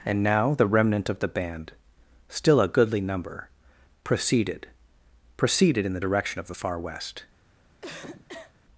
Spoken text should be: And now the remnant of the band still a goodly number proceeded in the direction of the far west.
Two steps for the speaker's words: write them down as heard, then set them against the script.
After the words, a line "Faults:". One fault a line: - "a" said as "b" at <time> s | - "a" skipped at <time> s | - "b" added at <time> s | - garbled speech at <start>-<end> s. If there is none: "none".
And now the remnant of the band still a goodly number proceeded proceeded in the direction of the far west.
Faults:
- "proceeded" added at 5.3 s